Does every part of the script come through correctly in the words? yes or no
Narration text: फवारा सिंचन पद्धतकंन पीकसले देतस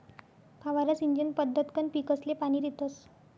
no